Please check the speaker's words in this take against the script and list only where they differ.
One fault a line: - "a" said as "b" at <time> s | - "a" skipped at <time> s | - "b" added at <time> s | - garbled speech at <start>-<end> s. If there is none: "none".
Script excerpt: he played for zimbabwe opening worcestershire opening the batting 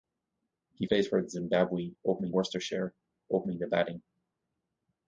none